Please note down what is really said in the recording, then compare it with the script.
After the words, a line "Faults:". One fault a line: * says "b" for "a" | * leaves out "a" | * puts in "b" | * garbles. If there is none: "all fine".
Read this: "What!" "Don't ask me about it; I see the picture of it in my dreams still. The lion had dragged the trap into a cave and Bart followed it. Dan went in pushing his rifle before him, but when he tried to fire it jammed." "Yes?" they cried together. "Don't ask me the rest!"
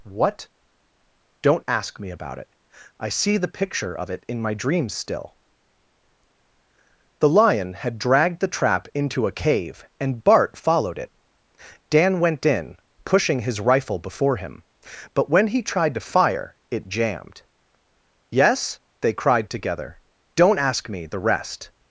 "What!" "Don't ask me about it; I see the picture of it in my dreams still. The lion had dragged the trap into a cave and Bart followed it. Dan went in pushing his rifle before him, but when he tried to fire it jammed." "Yes?" they cried together. "Don't ask me the rest!"
Faults:
all fine